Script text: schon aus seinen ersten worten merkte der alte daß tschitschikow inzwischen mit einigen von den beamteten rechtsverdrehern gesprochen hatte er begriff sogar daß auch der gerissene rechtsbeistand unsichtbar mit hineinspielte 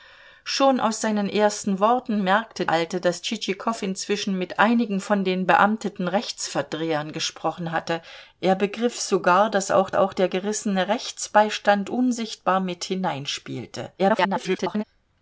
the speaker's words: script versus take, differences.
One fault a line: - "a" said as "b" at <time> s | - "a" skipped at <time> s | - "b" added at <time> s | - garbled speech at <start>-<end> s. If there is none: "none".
- "der" skipped at 2.6 s
- "auch" added at 9.9 s
- garbled speech at 14.0-14.8 s